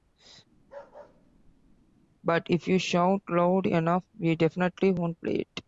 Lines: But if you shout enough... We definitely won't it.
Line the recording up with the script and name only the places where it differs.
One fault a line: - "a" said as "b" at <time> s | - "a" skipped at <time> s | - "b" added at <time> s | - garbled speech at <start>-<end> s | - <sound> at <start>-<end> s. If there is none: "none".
- bark at 0.6-2.0 s
- "loud" added at 3.3 s
- "play" added at 5.2 s